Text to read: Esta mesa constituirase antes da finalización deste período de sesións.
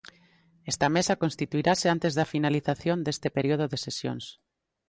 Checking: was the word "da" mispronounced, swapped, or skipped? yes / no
no